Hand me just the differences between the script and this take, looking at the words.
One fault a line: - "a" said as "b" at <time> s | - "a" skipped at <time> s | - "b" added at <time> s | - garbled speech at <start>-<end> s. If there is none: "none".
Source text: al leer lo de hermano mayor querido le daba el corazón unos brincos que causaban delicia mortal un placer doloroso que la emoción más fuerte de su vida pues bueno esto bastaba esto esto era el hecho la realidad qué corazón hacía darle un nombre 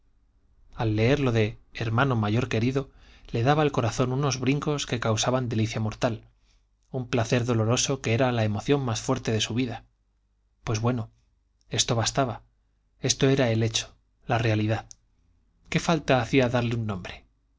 - "era" added at 8.2 s
- "esto" skipped at 13.3 s
- "corazón" said as "falta" at 15.8 s